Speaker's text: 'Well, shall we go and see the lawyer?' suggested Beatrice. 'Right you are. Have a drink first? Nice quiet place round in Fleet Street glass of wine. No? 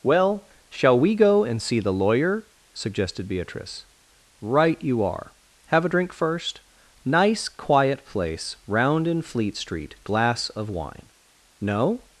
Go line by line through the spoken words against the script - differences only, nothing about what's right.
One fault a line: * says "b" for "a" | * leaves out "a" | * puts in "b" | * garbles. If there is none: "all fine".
all fine